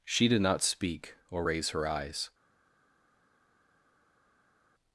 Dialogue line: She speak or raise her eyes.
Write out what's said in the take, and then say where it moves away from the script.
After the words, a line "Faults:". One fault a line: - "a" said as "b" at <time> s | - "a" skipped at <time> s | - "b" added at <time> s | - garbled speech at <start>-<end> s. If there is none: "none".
She did not speak or raise her eyes.
Faults:
- "did not" added at 0.3 s